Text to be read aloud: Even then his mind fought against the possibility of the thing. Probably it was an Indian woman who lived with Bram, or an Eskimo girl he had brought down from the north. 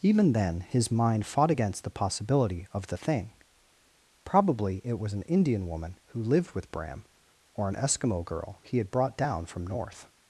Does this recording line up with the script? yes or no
no